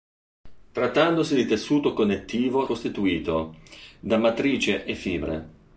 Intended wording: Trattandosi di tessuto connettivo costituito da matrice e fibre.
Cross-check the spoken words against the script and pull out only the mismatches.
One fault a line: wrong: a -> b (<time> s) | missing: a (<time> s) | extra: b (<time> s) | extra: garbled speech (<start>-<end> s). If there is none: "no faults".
no faults